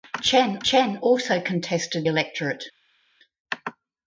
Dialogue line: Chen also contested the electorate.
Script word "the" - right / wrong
wrong